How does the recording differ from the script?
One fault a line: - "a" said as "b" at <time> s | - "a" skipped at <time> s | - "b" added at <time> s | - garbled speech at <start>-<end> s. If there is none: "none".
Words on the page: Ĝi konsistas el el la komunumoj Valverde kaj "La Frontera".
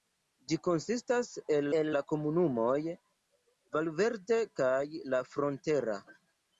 none